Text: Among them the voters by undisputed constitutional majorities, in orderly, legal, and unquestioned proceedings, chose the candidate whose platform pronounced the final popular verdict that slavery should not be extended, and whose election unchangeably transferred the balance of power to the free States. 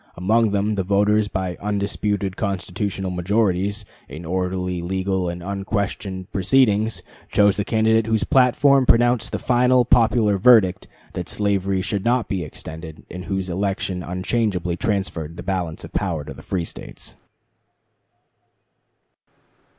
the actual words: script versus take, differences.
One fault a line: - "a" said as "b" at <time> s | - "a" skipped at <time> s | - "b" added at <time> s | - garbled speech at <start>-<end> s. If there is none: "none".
none